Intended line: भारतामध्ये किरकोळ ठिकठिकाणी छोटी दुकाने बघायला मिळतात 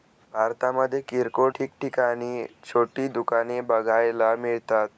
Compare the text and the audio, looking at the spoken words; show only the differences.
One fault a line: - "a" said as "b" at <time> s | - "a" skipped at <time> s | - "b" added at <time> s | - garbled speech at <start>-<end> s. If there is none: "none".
none